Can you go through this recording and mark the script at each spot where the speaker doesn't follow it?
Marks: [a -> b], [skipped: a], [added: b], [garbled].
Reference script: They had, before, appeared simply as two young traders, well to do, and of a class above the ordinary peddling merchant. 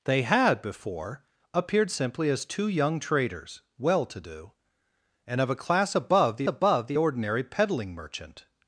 They had, before, appeared simply as two young traders, well to do, and of a class above the [added: above the] ordinary peddling merchant.